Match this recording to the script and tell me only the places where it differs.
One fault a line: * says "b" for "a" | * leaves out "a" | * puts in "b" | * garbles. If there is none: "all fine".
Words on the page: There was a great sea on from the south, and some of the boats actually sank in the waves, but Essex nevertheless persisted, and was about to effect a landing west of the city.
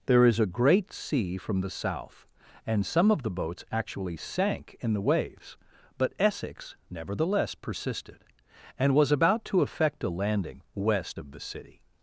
* says "is" for "was"
* leaves out "on"